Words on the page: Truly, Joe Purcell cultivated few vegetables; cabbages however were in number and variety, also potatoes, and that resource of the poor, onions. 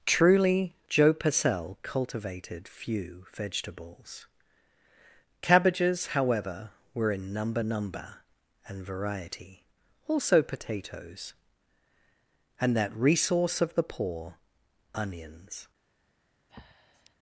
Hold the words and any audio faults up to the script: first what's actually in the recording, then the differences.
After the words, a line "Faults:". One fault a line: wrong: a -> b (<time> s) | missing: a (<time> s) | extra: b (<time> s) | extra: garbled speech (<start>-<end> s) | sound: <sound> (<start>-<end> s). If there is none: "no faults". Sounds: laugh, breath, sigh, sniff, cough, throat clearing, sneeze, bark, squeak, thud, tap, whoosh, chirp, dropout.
Truly, Joe Purcell cultivated few vegetables; cabbages however were in number number and variety, also potatoes, and that resource of the poor, onions.
Faults:
extra: number (7.6 s)
sound: breath (16.5-17.2 s)